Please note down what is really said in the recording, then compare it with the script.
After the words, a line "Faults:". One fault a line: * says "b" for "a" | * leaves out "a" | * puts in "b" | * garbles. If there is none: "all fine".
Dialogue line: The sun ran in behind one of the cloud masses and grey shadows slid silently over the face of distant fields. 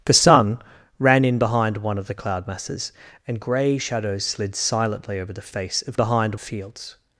The sun ran in behind one of the cloud masses and grey shadows slid silently over the face of behind fields.
Faults:
* says "behind" for "distant"